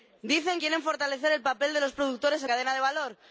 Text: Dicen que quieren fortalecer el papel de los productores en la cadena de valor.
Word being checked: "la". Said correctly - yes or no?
no